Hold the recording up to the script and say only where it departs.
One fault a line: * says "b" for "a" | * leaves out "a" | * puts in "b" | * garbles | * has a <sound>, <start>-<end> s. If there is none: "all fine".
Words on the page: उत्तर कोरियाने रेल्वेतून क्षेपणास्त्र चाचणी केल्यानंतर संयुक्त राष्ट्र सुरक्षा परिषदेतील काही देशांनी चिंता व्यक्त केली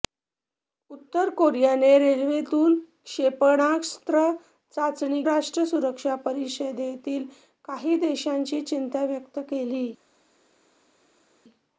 * leaves out "केल्यानंतर संयुक्त"